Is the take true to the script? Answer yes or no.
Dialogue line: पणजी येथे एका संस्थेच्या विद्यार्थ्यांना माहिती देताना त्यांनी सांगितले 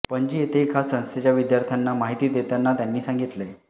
yes